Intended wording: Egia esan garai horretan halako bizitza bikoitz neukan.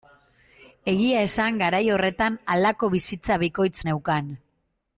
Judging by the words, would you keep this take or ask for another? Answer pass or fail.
pass